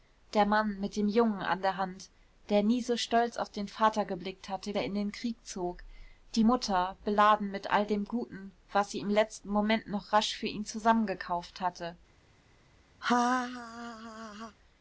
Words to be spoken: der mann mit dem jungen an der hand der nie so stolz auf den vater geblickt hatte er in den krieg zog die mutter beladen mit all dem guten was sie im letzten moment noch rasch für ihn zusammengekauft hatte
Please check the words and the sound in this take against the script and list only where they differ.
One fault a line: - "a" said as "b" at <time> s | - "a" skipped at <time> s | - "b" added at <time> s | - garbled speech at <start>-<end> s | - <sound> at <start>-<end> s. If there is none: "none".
- laugh at 13.0-14.6 s